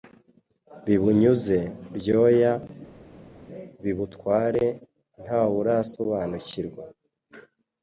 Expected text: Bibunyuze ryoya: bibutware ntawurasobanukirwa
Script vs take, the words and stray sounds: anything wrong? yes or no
no